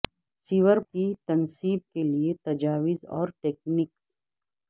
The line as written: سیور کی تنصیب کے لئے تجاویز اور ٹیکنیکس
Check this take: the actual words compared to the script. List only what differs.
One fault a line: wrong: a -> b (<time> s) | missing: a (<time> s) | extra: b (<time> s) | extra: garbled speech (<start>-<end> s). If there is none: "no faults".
no faults